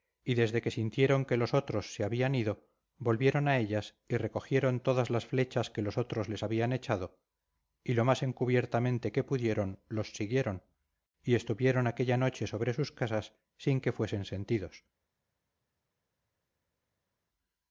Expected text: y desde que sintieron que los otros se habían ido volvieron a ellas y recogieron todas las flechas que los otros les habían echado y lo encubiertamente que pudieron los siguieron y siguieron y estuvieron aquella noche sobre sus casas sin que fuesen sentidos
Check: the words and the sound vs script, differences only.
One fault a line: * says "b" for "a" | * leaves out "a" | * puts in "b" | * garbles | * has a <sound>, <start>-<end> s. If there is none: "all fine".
* puts in "más"
* leaves out "siguieron y"